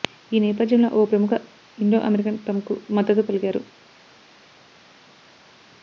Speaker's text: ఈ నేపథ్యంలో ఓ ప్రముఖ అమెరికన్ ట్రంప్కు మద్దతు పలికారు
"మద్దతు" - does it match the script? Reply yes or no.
yes